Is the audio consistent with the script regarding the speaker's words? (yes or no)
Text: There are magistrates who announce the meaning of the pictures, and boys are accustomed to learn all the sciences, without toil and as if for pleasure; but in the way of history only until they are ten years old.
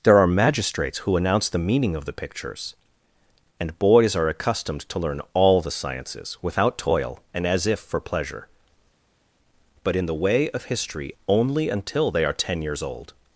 yes